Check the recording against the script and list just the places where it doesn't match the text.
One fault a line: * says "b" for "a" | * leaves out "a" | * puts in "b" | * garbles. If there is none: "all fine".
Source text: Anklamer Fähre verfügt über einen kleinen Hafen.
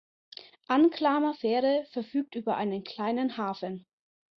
all fine